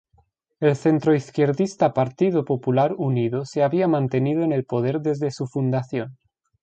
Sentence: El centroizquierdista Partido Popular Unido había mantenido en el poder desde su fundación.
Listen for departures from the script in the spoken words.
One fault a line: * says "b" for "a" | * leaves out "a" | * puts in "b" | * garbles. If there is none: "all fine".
* puts in "se"